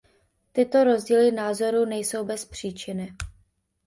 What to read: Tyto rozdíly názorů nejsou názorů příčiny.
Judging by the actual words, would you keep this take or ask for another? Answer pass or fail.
fail